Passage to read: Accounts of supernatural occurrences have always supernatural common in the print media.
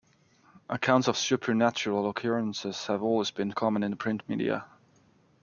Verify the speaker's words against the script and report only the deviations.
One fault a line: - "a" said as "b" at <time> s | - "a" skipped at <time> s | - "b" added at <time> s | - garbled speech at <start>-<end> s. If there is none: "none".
- "supernatural" said as "been" at 3.3 s